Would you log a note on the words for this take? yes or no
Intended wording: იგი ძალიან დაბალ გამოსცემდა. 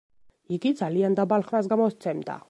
yes